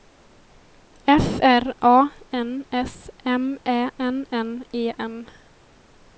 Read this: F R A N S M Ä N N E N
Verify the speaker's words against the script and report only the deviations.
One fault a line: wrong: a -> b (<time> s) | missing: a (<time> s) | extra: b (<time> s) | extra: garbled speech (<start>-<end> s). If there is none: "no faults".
no faults